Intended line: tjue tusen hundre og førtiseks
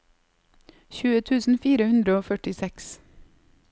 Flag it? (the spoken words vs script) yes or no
yes